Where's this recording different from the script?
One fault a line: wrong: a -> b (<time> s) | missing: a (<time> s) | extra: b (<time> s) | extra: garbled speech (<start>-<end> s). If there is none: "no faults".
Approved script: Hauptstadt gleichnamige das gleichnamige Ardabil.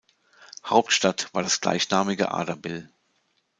wrong: gleichnamige -> war (1.3 s)